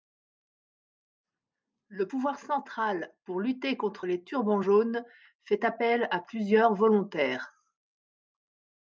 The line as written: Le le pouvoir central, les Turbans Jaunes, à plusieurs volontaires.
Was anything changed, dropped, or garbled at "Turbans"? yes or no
no